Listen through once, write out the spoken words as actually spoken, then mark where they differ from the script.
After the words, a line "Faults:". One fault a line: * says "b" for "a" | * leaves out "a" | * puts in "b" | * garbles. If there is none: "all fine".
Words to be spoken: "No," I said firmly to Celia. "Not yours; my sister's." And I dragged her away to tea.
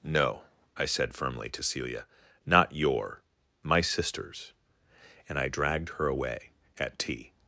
"No," I said firmly to Celia. "Not your; my sister's." And I dragged her away at tea.
Faults:
* says "your" for "yours"
* says "at" for "to"